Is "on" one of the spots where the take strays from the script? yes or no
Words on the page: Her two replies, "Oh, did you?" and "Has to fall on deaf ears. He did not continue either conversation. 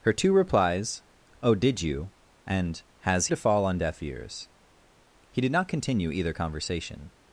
no